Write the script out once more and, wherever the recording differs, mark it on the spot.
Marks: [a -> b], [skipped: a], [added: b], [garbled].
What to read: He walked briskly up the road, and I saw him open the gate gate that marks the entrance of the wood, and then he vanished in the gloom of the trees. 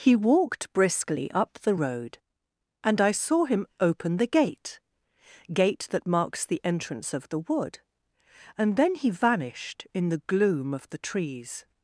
He walked briskly up the road, and I saw him open the gate gate that marks the entrance of the wood, and then he vanished in the gloom of the trees.